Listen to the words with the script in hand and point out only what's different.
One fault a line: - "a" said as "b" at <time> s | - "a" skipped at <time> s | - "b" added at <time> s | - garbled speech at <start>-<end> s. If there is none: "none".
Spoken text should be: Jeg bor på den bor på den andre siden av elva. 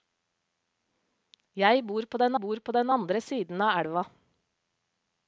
none